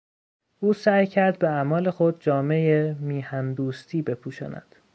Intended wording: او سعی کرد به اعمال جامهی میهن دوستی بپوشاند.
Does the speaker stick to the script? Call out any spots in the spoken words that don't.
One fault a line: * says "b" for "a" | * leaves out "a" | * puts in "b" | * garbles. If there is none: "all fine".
* puts in "خود"